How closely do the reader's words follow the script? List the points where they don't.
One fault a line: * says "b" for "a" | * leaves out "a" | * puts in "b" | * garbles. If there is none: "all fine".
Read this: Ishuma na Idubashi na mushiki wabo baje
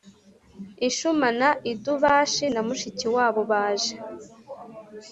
all fine